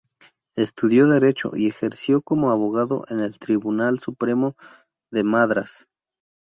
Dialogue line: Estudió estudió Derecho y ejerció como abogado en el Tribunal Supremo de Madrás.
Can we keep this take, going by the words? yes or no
no